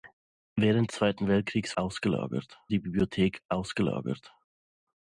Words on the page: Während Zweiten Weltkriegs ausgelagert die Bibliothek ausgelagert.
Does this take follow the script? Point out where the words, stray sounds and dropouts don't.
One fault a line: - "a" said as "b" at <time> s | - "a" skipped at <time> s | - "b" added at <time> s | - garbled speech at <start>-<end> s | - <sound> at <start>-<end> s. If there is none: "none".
none